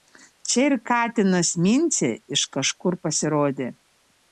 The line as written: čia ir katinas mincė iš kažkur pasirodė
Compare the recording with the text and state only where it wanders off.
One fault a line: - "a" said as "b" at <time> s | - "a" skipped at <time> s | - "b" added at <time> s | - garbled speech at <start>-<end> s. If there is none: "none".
none